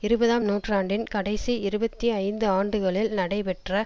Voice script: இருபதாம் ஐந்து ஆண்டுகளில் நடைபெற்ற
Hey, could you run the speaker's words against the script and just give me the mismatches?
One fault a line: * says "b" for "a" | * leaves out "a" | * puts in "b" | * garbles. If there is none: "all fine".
* puts in "நூற்றாண்டின் கடைசி இருபத்தி"